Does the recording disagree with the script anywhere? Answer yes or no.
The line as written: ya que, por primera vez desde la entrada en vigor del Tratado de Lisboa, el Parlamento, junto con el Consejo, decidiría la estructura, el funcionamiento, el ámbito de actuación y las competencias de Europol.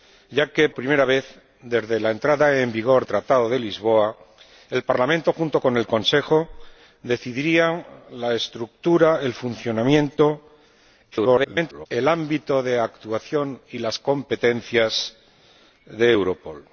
yes